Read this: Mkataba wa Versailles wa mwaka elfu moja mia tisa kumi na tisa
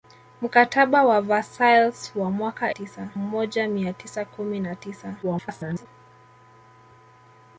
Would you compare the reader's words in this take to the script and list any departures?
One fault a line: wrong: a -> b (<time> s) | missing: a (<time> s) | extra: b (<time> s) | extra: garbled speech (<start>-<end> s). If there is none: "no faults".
wrong: elfu -> tisa (2.7 s)
extra: garbled speech (5.2-5.9 s)